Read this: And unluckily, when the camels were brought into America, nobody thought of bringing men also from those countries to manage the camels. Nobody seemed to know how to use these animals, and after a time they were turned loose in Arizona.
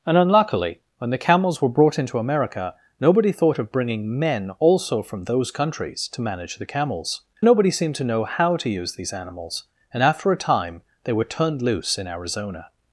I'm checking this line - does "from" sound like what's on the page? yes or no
yes